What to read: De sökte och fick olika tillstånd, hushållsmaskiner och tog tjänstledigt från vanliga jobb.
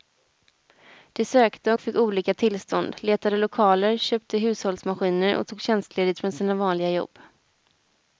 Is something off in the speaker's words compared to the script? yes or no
yes